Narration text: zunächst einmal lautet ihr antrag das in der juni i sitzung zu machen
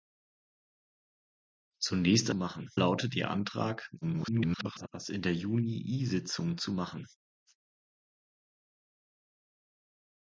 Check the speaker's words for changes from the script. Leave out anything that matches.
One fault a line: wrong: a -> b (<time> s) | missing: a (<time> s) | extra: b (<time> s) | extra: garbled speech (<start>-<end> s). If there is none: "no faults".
wrong: einmal -> machen (2.3 s)
extra: garbled speech (4.0-4.9 s)